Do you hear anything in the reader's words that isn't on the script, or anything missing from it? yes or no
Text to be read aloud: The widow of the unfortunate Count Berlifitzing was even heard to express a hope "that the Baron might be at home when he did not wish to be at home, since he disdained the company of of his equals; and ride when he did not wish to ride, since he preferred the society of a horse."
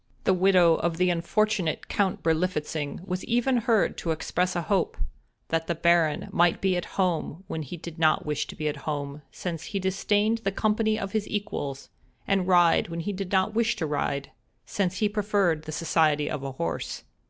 yes